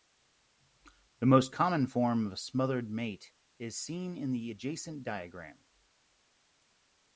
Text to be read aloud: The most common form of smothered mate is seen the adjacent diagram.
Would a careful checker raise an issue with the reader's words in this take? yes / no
yes